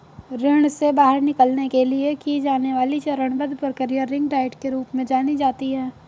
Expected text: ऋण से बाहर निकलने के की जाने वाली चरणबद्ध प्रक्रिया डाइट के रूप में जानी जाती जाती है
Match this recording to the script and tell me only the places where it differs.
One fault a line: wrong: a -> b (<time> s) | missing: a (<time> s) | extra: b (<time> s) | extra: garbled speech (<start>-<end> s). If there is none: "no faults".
extra: लिए (1.8 s)
extra: रिंग (4.0 s)
missing: जाती (5.7 s)